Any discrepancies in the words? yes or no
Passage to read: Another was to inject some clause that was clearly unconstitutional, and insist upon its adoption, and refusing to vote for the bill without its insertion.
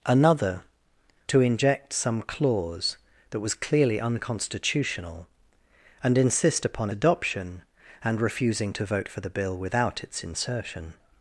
yes